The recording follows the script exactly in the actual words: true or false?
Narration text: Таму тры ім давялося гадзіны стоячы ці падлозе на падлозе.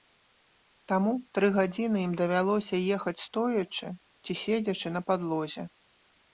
false